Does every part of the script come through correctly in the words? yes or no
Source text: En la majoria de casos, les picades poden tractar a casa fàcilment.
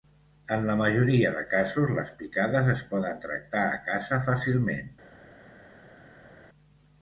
no